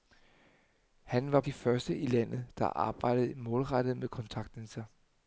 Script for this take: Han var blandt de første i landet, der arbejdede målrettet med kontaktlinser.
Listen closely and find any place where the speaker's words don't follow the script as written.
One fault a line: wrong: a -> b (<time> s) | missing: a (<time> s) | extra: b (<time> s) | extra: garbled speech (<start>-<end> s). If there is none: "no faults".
missing: blandt (1.4 s)